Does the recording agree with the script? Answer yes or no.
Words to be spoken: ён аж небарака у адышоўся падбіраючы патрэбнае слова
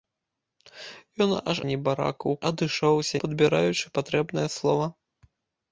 yes